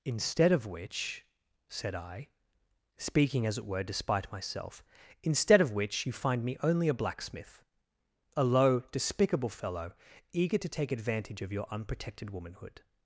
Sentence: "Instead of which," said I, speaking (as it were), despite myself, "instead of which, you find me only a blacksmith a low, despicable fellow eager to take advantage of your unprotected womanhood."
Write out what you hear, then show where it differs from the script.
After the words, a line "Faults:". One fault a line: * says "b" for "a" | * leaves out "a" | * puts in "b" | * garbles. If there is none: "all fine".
"Instead of which," said I, speaking (as it were), despite myself, "instead of which, you find me only a blacksmith a low, despicable fellow eager to take advantage of your unprotected womanhood."
Faults:
all fine